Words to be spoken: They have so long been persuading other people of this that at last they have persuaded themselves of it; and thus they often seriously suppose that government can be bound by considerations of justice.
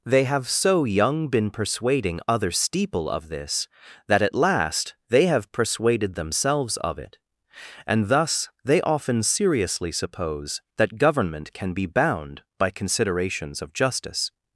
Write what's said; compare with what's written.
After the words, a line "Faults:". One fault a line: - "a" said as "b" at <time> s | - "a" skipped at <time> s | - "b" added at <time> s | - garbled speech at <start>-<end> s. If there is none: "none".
They have so young been persuading other steeple of this that at last they have persuaded themselves of it; and thus they often seriously suppose that government can be bound by considerations of justice.
Faults:
- "long" said as "young" at 0.8 s
- "people" said as "steeple" at 2.5 s